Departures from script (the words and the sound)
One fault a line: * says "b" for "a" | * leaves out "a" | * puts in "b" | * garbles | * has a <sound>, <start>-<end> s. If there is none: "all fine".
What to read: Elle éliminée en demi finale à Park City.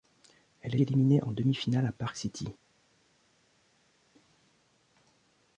all fine